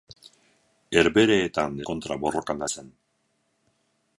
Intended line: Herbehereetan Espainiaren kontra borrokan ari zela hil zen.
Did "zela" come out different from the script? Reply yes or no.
yes